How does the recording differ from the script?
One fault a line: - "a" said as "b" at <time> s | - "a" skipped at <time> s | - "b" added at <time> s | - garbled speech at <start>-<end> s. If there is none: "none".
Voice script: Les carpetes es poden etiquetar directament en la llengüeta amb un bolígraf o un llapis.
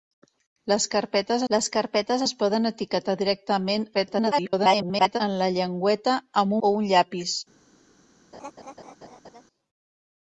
- "les carpetes" added at 1.5 s
- garbled speech at 3.9-5.2 s
- "un bolígraf" skipped at 6.6 s